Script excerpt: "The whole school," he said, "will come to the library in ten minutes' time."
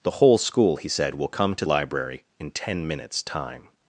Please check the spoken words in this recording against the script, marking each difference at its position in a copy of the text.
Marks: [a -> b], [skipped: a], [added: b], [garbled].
"The whole school," he said, "will come to [skipped: the] library in ten minutes' time."